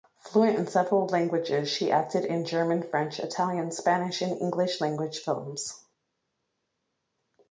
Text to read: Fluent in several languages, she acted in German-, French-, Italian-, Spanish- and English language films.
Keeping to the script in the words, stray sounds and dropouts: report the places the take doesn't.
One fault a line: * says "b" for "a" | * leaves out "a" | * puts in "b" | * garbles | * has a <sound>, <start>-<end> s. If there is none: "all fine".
all fine